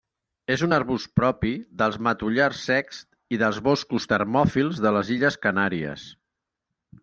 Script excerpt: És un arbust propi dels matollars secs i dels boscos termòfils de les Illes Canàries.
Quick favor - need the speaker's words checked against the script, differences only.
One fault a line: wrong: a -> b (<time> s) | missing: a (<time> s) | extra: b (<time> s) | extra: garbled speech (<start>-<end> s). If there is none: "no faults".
no faults